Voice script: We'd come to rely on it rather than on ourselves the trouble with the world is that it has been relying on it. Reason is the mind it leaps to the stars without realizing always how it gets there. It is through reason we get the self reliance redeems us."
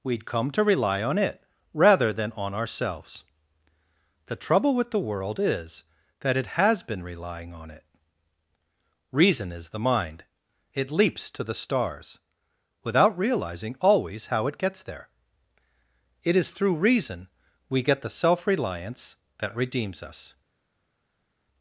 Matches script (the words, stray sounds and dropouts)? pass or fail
fail